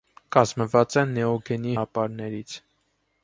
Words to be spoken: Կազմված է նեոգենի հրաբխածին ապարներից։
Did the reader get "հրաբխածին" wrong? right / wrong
wrong